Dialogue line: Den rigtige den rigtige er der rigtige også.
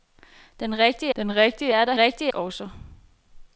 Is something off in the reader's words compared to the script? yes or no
no